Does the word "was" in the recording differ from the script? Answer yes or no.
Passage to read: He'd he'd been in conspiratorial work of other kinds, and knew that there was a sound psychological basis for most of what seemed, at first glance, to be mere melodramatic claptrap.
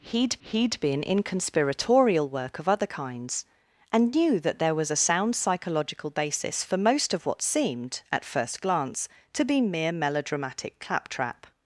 no